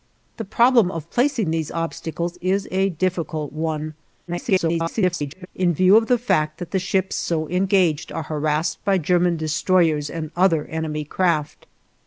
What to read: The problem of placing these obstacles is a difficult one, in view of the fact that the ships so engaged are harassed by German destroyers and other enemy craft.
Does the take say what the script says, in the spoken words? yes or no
no